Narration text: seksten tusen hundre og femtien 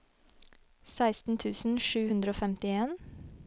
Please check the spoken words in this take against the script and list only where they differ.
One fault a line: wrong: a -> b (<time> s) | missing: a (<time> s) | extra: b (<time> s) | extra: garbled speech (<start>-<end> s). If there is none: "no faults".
extra: sju (1.9 s)